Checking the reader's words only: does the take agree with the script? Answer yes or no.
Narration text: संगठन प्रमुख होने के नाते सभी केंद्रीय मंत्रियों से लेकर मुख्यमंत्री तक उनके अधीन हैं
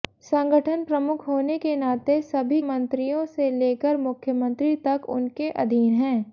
no